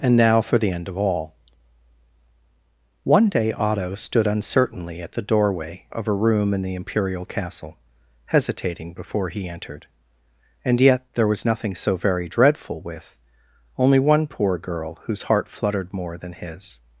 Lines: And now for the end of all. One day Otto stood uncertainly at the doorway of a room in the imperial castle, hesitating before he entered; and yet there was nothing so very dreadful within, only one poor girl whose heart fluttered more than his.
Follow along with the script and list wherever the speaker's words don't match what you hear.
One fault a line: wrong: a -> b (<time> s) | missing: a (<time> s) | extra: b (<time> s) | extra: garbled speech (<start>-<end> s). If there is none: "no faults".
wrong: within -> with (12.8 s)